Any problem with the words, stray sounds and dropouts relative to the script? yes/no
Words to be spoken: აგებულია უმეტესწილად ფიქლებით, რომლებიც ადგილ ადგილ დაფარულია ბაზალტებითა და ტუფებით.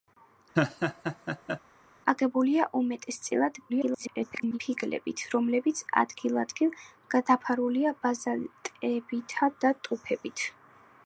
yes